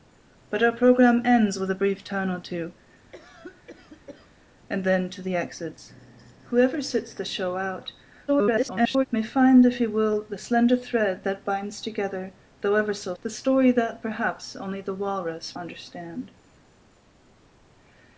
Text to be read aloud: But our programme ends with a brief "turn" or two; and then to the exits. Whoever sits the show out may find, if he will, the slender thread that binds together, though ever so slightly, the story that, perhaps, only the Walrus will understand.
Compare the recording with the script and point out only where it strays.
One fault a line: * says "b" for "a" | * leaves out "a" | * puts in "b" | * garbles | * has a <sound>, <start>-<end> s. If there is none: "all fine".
* has a cough, 3.1-4.3 s
* garbles
* leaves out "slightly"
* leaves out "will"